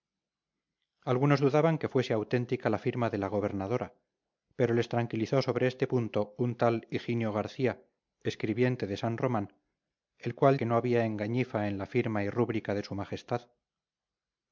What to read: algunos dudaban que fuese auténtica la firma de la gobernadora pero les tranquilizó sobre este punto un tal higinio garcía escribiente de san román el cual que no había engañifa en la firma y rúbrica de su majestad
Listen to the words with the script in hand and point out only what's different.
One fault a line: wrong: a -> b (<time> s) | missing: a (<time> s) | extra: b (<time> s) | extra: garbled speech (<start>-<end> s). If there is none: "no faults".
no faults